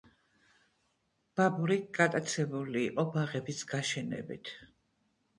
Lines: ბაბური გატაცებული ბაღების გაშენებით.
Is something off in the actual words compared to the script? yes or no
yes